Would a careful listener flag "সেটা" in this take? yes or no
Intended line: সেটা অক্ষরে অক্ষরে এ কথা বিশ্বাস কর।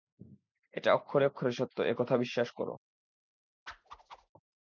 yes